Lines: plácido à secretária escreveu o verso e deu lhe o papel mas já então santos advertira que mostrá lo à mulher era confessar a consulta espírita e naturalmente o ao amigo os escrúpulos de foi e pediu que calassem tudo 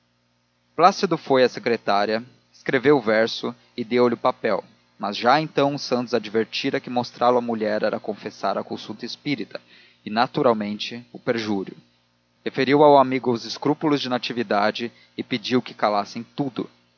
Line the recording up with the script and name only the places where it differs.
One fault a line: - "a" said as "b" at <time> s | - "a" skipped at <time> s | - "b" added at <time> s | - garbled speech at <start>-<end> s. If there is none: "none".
- "foi" added at 1.2 s
- "perjúrio referiu" added at 11.2 s
- "foi" said as "natividade" at 14.1 s